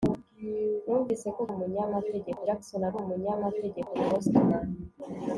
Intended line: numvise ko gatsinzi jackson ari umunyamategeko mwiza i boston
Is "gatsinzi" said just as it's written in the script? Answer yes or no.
no